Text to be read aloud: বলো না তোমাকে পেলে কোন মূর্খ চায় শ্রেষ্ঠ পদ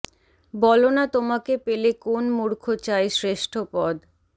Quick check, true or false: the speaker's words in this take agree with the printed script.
true